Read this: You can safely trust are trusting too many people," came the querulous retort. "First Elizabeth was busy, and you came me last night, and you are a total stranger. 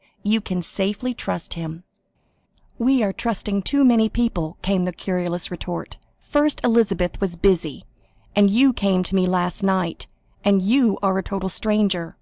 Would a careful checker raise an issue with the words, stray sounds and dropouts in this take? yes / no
yes